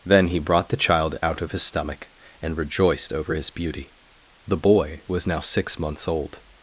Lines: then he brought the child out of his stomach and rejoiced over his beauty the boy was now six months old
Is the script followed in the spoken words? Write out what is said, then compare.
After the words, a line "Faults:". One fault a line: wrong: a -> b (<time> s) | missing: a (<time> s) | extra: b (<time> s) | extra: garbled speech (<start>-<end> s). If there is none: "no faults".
then he brought the child out of his stomach and rejoiced over his beauty the boy was now six months old
Faults:
no faults